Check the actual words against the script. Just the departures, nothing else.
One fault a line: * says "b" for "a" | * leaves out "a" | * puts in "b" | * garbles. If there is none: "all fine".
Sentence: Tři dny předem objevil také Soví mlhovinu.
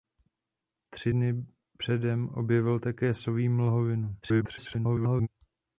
* garbles